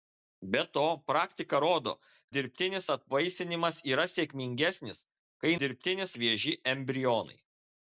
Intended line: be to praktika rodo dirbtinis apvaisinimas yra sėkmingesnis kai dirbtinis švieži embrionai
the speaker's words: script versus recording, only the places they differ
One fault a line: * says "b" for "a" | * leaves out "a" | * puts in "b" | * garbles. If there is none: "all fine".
all fine